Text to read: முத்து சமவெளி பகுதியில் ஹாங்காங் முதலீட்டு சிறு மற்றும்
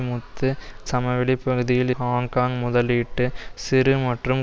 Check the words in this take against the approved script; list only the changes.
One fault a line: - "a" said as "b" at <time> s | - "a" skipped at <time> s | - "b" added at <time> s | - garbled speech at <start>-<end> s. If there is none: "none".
none